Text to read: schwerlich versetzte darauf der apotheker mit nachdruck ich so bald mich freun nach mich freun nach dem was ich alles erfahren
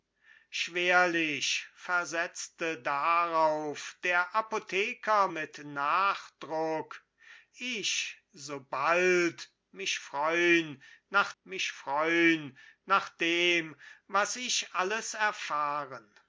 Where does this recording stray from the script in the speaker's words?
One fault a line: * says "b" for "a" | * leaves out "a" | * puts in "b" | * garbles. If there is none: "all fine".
all fine